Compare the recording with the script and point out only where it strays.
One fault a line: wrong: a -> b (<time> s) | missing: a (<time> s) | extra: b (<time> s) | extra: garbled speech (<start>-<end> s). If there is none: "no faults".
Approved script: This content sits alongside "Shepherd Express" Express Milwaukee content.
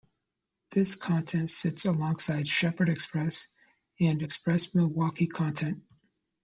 extra: and (4.0 s)